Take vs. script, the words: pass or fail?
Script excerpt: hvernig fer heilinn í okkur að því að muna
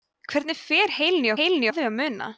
fail